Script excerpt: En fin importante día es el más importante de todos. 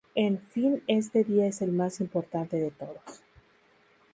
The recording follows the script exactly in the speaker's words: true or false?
false